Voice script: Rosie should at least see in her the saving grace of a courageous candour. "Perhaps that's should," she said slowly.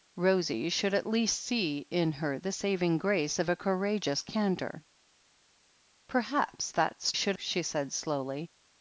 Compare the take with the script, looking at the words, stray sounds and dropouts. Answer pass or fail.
pass